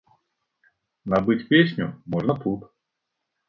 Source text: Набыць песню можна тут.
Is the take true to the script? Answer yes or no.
yes